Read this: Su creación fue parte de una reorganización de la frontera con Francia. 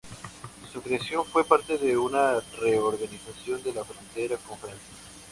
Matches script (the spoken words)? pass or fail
pass